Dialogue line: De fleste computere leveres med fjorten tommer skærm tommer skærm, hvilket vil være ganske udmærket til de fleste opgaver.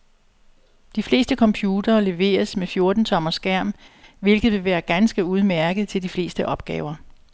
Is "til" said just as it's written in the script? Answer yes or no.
yes